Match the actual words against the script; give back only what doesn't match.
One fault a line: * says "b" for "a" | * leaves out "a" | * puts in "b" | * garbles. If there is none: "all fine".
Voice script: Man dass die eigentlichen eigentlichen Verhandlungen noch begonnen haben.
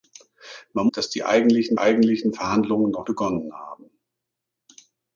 all fine